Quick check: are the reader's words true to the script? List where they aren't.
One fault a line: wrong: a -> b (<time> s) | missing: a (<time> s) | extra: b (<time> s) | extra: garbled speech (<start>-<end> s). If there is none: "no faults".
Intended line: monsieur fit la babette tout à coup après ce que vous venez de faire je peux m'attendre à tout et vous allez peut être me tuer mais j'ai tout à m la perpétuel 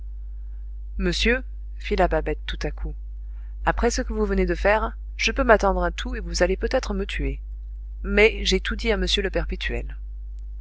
extra: dit (8.8 s)
wrong: la -> le (9.1 s)